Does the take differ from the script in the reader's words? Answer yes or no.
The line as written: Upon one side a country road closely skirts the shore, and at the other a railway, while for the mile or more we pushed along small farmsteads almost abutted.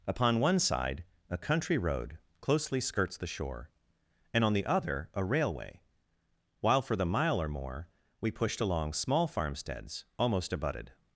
yes